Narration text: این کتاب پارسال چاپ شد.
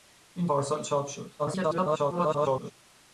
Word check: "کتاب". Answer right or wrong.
wrong